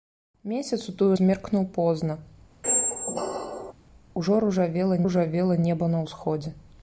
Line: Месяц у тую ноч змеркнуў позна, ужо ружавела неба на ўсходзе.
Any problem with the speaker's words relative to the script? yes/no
yes